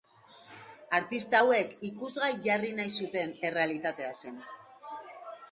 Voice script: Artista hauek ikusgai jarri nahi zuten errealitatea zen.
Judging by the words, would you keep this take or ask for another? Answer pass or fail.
pass